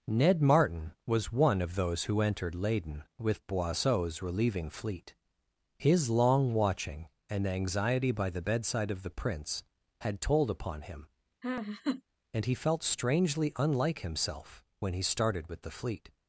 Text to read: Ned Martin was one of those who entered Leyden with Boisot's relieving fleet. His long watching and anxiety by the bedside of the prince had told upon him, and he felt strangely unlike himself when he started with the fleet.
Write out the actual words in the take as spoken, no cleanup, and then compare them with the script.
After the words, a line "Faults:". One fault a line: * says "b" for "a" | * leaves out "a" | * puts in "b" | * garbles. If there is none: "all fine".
Ned Martin was one of those who entered Leyden with Boisot's relieving fleet. His long watching and anxiety by the bedside of the prince had told upon him, and he felt strangely unlike himself when he started with the fleet.
Faults:
all fine